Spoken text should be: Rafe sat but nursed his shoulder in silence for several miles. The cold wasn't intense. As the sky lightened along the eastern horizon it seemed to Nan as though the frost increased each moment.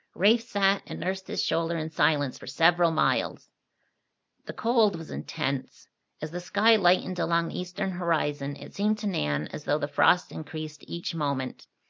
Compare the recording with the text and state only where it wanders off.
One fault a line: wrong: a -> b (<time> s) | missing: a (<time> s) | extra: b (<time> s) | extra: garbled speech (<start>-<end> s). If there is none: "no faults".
wrong: but -> and (0.9 s)
wrong: wasn't -> was (5.0 s)